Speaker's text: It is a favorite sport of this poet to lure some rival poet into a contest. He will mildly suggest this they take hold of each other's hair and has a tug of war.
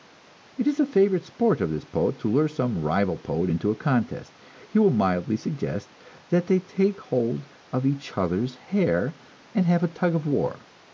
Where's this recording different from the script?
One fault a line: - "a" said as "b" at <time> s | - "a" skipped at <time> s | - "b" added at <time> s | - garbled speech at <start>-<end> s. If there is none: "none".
- "this" said as "that" at 6.3 s
- "has" said as "have" at 9.7 s